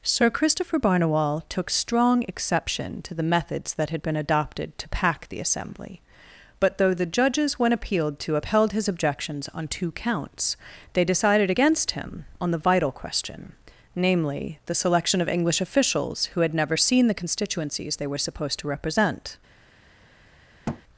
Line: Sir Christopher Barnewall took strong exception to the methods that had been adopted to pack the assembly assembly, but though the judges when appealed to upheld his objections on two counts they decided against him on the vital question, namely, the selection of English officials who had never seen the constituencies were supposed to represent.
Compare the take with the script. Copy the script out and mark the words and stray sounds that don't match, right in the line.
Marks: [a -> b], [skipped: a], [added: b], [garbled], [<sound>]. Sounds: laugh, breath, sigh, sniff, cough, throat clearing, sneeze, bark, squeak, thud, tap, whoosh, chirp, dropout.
Sir Christopher Barnewall took strong exception to the methods that had been adopted to pack the assembly [skipped: assembly,] but though the judges when appealed to upheld his objections on two counts they decided against him on the vital question, namely, the selection of English officials who had never seen the constituencies [added: they] were supposed to represent. [thud]